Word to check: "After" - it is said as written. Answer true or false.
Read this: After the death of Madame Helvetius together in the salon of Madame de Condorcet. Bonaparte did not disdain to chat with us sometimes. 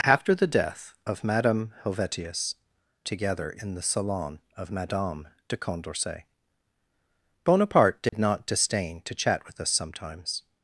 true